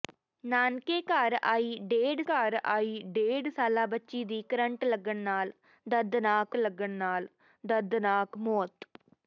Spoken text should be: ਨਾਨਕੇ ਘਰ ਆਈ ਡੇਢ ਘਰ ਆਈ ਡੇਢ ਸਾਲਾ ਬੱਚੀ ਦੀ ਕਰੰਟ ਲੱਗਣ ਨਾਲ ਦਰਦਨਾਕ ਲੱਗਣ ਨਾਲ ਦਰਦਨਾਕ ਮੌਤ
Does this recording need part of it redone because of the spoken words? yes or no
no